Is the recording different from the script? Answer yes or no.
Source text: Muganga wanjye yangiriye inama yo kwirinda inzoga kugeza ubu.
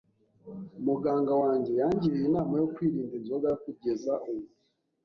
no